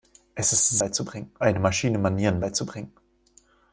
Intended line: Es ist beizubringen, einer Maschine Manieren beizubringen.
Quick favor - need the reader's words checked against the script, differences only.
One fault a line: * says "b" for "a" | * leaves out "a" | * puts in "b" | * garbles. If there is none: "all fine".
all fine